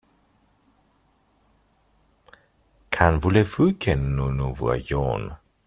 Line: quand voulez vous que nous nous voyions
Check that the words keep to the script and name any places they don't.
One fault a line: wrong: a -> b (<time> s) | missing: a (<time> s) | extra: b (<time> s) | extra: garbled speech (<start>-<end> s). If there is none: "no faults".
no faults